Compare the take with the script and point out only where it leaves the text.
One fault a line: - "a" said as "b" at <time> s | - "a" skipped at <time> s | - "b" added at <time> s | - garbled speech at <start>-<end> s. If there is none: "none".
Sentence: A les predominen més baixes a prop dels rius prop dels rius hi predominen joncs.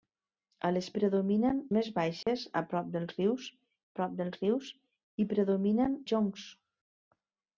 none